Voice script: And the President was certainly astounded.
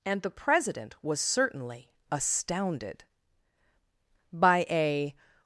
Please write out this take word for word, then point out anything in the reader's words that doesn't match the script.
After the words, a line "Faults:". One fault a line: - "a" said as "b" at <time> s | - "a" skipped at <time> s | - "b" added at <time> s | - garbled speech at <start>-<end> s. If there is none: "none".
And the President was certainly astounded. By a
Faults:
- "By a" added at 4.3 s